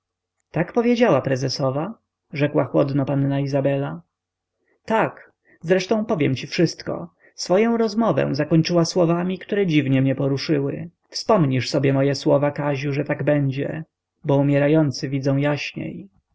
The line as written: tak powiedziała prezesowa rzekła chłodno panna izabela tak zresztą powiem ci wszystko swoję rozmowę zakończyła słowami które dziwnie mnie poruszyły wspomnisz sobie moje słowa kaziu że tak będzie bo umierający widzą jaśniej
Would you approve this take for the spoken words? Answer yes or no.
yes